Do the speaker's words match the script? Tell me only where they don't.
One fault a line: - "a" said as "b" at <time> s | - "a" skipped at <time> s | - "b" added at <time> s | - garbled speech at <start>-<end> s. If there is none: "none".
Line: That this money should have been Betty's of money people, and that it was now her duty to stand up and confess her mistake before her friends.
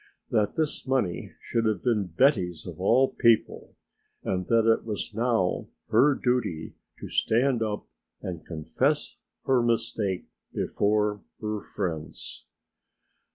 - "money" said as "all" at 2.8 s